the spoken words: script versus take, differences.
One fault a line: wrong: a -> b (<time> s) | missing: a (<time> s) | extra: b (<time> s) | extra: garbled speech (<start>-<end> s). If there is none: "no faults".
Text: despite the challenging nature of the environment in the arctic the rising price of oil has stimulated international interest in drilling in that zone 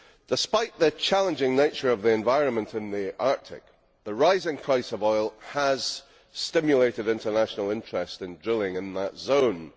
no faults